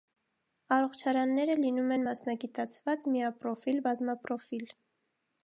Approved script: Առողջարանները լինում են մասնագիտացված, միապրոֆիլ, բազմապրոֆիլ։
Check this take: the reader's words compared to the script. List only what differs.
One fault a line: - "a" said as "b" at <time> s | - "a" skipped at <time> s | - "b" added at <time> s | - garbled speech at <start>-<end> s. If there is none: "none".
none